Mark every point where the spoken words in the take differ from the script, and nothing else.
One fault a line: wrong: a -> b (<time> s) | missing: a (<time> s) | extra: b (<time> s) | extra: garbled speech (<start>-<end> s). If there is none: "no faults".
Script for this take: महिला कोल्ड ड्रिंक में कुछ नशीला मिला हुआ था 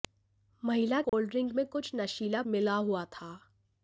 no faults